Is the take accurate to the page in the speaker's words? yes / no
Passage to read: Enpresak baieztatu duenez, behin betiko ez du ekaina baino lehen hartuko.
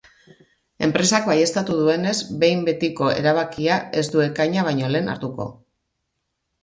no